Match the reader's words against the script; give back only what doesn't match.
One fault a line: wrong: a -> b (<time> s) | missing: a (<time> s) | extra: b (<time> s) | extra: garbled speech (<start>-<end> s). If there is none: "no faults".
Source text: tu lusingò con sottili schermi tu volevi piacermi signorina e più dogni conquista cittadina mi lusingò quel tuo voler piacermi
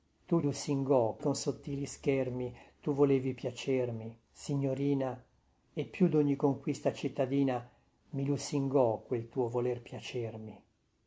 no faults